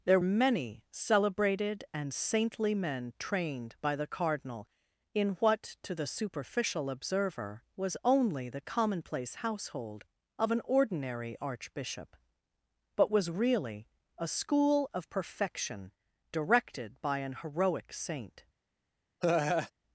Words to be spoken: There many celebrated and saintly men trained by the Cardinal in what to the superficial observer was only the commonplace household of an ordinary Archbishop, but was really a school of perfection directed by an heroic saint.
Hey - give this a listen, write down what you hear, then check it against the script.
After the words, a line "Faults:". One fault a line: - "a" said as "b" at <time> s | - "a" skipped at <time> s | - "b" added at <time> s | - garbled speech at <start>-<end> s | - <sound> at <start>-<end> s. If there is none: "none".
There many celebrated and saintly men trained by the Cardinal in what to the superficial observer was only the commonplace household of an ordinary Archbishop, but was really a school of perfection directed by an heroic saint.
Faults:
- laugh at 19.2-19.7 s